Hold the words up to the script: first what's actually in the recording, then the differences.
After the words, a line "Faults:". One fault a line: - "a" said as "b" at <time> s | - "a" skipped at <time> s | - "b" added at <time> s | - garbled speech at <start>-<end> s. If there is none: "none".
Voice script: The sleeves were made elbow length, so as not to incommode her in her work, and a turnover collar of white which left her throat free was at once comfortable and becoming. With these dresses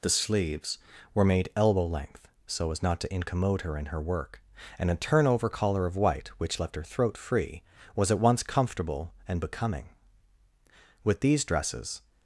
The sleeves were made elbow length, so as not to incommode her in her work, and a turnover collar of white which left her throat free was at once comfortable and becoming. With these dresses
Faults:
none